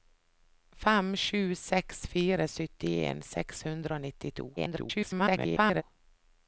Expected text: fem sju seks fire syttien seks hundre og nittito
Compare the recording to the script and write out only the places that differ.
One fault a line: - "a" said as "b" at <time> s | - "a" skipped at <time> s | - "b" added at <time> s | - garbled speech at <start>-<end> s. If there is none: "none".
- garbled speech at 4.6-5.8 s